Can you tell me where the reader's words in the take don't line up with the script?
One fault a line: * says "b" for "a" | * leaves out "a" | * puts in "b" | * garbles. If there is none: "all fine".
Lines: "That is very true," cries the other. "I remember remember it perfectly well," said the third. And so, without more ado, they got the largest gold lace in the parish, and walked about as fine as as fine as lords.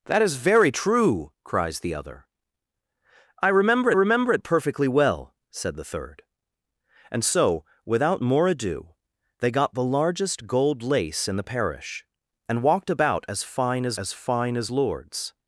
all fine